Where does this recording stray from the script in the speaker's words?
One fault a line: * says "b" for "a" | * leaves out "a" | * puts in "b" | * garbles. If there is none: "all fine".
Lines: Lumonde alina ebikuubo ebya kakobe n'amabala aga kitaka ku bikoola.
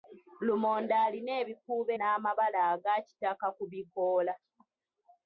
* leaves out "ebya kakobe"